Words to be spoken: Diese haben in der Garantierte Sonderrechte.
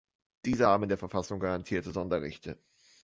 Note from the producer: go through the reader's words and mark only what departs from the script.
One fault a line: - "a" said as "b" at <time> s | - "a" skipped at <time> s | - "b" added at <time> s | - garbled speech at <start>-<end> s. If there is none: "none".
- "Verfassung" added at 1.0 s